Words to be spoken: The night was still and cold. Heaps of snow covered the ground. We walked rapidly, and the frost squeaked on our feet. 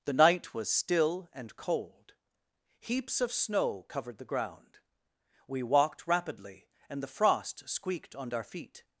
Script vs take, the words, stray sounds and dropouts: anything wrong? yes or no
no